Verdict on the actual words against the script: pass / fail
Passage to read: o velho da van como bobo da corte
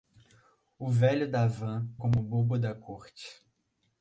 pass